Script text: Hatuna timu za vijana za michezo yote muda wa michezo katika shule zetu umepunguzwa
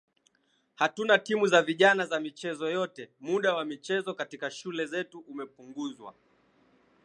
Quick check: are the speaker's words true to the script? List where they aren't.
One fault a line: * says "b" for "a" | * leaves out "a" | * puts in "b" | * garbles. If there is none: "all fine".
all fine